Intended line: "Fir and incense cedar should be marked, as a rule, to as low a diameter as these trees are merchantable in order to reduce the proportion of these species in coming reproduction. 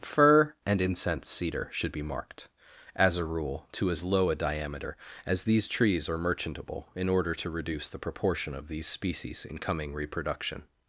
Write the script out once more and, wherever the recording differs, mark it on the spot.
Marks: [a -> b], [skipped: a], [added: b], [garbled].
"Fir and incense cedar should be marked, as a rule, to as low a diameter as these trees are merchantable in order to reduce the proportion of these species in coming reproduction.